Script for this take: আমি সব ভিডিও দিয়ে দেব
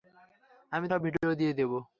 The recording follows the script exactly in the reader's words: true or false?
true